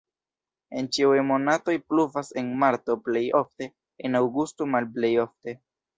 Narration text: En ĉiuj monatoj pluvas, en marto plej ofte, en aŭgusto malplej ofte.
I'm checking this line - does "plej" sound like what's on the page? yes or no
yes